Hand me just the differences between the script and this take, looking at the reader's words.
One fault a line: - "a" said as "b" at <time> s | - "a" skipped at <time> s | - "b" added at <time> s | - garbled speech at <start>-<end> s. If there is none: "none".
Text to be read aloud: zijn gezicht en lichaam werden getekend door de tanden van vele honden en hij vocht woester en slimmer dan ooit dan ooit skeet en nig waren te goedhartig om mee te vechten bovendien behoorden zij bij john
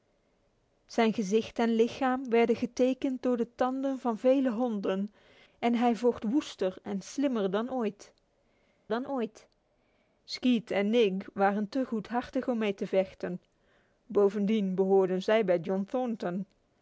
none